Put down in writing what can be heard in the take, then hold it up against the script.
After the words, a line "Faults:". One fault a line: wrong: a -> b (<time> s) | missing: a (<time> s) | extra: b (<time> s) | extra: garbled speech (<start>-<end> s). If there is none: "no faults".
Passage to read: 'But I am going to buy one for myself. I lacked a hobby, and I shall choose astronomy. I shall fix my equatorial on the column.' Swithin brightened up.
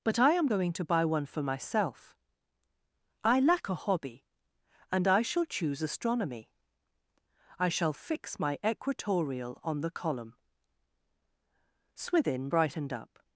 'But I am going to buy one for myself. I lack a hobby, and I shall choose astronomy. I shall fix my equatorial on the column.' Swithin brightened up.
Faults:
wrong: lacked -> lack (3.4 s)